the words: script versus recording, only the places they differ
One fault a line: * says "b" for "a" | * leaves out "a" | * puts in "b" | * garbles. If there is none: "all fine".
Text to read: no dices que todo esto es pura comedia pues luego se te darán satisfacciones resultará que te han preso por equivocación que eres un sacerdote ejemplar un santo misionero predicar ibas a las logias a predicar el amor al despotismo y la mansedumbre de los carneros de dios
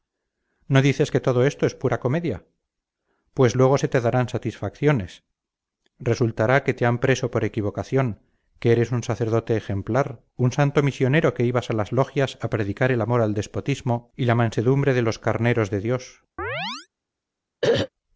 * says "que" for "predicar"